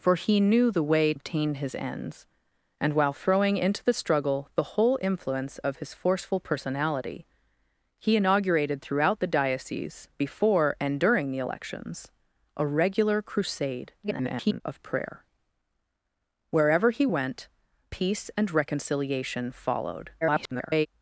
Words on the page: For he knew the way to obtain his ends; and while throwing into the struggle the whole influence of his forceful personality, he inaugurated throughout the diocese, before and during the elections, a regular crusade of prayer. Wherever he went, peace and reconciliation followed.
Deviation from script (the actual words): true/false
true